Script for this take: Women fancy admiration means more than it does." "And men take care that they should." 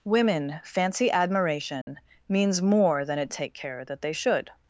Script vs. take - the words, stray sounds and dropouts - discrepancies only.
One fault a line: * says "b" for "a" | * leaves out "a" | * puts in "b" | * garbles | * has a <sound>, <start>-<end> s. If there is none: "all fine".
* has a dropout, 1.8-1.9 s
* leaves out "does And men"